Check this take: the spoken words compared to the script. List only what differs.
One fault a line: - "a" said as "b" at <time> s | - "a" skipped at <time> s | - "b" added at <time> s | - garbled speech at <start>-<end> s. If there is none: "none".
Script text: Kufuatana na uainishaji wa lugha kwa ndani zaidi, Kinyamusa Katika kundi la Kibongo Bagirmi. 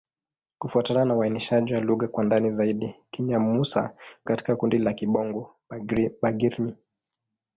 none